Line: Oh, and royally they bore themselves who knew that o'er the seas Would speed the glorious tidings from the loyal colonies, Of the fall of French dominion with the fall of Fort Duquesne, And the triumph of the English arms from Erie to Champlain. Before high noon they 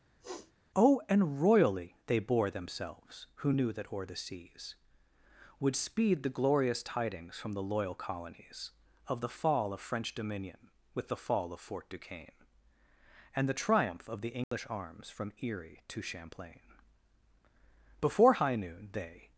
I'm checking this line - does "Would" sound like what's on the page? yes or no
yes